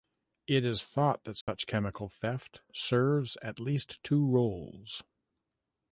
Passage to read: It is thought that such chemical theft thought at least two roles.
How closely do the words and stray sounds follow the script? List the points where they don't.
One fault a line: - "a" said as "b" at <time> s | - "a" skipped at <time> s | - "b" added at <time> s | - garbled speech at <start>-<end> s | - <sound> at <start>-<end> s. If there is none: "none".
- dropout at 1.4-1.5 s
- "thought" said as "serves" at 2.7 s